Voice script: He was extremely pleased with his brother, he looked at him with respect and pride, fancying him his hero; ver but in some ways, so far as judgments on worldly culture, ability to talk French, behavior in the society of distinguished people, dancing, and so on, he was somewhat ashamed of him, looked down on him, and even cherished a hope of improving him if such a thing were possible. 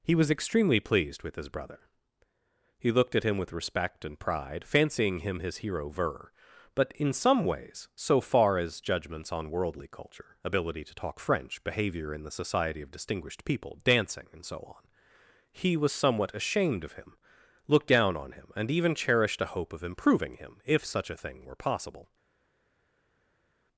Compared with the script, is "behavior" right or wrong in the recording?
right